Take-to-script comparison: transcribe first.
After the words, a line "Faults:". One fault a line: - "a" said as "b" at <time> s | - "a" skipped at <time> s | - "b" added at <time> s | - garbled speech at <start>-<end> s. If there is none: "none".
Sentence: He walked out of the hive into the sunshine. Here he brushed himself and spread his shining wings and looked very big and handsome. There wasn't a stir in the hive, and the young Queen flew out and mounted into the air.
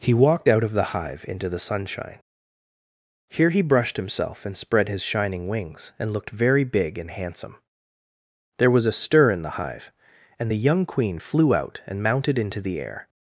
He walked out of the hive into the sunshine. Here he brushed himself and spread his shining wings and looked very big and handsome. There was a stir in the hive, and the young Queen flew out and mounted into the air.
Faults:
- "wasn't" said as "was" at 8.7 s